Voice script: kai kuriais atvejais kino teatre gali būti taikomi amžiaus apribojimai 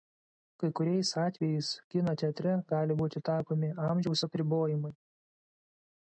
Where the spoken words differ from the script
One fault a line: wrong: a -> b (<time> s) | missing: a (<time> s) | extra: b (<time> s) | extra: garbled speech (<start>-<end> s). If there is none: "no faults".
no faults